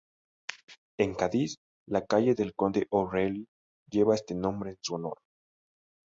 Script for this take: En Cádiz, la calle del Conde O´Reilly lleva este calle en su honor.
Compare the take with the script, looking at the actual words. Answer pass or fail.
fail